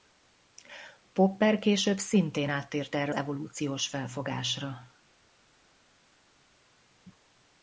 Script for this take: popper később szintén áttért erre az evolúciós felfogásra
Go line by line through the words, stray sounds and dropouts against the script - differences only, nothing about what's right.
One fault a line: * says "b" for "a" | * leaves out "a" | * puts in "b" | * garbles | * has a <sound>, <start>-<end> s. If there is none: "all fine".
* leaves out "az"